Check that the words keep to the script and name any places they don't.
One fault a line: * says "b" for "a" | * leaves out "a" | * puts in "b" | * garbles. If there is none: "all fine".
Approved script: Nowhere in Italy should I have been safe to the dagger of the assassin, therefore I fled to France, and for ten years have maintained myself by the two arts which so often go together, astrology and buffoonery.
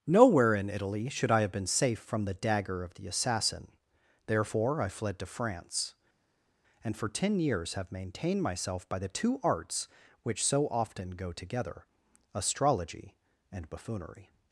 * says "from" for "to"